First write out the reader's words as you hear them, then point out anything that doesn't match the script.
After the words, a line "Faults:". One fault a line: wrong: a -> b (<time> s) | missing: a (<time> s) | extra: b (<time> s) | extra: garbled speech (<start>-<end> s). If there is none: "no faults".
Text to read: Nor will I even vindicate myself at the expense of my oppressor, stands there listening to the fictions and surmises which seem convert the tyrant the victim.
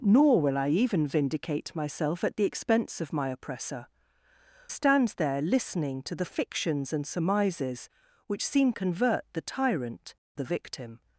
Nor will I even vindicate myself at the expense of my oppressor, stands there listening to the fictions and surmises which seem convert the tyrant the victim.
Faults:
no faults